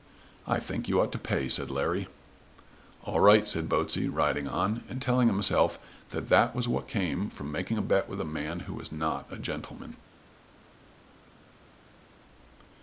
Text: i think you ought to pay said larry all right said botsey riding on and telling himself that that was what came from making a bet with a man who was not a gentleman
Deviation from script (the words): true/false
false